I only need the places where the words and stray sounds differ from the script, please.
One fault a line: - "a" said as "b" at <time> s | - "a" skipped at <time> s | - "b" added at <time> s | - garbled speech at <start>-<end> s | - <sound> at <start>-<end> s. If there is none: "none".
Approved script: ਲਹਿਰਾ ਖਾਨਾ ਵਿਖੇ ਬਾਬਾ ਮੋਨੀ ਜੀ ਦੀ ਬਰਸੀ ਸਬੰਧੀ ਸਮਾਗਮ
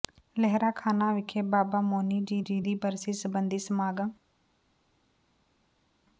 - "ਜੀ" added at 2.4 s